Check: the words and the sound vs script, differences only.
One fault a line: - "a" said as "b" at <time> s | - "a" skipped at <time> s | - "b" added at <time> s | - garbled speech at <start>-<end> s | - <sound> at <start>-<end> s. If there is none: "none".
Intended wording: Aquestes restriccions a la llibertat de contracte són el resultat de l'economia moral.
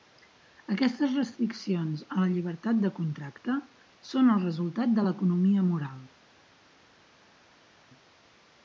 none